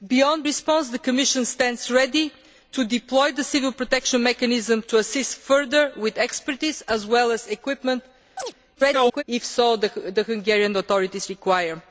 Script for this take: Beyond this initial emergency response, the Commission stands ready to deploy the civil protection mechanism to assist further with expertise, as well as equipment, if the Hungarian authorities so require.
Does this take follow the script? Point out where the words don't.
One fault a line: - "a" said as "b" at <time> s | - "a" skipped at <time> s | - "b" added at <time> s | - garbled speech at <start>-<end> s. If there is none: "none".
- "this initial emergency" skipped at 0.5 s
- garbled speech at 8.7-9.2 s